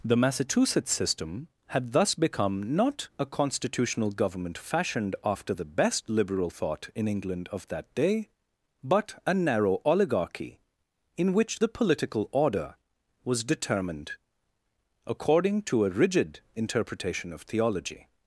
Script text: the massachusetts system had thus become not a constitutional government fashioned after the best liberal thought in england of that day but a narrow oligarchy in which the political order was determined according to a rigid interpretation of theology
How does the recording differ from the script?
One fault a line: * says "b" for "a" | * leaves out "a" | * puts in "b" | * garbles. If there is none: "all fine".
all fine